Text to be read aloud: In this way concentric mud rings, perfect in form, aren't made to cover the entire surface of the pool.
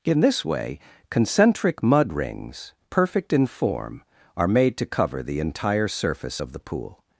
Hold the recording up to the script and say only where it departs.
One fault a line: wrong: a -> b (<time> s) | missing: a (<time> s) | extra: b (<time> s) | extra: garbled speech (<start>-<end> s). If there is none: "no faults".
wrong: aren't -> are (4.4 s)